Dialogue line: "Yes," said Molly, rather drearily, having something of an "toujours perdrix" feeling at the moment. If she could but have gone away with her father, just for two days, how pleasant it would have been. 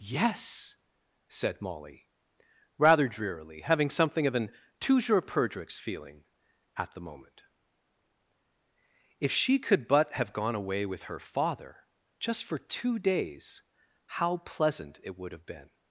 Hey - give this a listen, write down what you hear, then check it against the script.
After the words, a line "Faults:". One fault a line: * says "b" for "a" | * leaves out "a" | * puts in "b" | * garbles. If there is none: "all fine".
"Yes," said Molly, rather drearily, having something of an "toujours perdrix" feeling at the moment. If she could but have gone away with her father, just for two days, how pleasant it would have been.
Faults:
all fine